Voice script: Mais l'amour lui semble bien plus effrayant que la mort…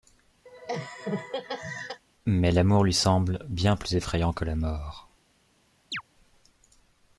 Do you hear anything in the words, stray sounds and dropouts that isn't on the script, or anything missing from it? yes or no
yes